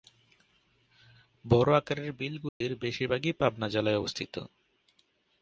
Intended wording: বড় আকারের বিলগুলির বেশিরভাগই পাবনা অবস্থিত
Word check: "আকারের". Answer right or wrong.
right